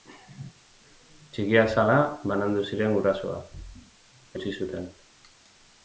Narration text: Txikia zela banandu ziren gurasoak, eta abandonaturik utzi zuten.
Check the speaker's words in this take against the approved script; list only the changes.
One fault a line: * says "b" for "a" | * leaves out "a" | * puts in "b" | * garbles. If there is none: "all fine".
* leaves out "eta abandonaturik"